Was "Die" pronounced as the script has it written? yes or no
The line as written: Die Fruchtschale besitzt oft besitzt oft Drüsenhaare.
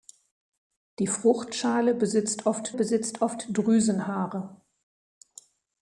yes